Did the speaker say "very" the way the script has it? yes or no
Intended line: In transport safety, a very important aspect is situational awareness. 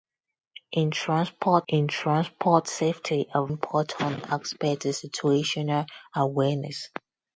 no